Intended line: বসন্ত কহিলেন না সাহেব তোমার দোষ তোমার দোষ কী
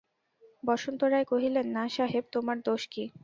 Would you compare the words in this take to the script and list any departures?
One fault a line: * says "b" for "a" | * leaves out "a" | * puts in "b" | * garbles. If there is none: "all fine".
* puts in "রায়"
* leaves out "তোমার দোষ"